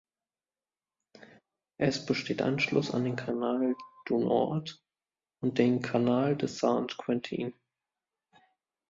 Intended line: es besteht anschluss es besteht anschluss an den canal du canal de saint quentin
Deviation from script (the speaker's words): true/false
true